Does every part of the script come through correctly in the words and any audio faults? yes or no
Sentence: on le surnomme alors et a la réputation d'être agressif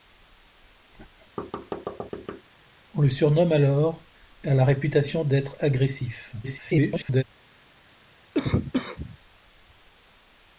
no